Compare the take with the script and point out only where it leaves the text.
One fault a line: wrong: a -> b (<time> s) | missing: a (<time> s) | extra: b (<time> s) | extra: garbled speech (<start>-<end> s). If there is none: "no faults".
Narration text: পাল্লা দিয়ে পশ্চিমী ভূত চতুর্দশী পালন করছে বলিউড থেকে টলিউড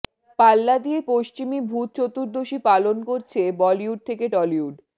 no faults